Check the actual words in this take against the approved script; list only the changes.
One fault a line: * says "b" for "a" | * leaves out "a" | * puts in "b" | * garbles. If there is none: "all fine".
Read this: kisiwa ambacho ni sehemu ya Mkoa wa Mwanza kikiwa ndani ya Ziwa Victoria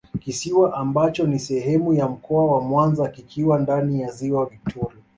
all fine